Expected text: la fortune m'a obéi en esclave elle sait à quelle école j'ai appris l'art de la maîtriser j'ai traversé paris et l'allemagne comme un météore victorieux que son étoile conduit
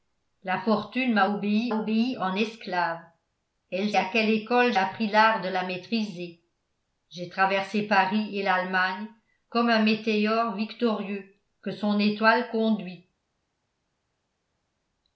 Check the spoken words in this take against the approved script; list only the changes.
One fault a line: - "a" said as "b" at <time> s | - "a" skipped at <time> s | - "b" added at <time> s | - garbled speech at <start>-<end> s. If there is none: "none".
- "obéi" added at 1.7 s
- "sait" skipped at 3.9 s
- "j'ai" skipped at 4.7 s